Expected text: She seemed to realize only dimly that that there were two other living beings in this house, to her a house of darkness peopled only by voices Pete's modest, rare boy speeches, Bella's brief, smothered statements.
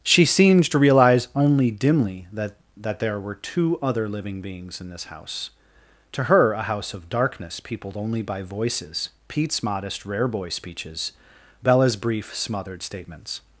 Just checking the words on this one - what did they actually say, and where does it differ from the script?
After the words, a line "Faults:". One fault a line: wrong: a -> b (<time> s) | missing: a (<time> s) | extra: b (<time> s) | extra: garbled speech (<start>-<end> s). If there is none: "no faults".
She seemed to realize only dimly that that there were two other living beings in this house, to her a house of darkness peopled only by voices Pete's modest, rare boy speeches, Bella's brief, smothered statements.
Faults:
no faults